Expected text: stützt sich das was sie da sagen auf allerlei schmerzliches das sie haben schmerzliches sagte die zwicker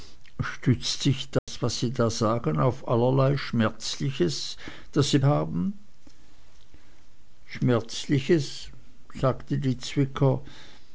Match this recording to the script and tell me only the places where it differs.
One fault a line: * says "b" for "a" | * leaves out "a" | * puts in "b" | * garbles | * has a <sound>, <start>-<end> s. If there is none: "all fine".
* has a dropout, 1.4-1.5 s